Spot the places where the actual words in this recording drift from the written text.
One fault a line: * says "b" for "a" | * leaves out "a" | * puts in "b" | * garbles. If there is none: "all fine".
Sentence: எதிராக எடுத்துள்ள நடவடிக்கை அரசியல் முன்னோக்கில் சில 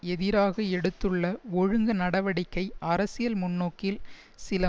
* puts in "ஒழுங்கு"